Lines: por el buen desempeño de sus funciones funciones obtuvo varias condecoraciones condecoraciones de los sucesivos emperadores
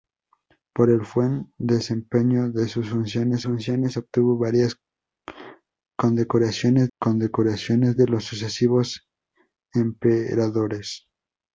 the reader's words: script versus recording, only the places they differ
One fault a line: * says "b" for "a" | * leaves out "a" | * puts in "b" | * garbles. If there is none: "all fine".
all fine